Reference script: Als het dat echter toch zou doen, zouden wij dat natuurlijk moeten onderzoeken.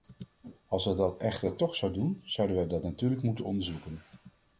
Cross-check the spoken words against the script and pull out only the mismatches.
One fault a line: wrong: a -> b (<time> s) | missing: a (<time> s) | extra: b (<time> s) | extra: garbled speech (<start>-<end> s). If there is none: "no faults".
no faults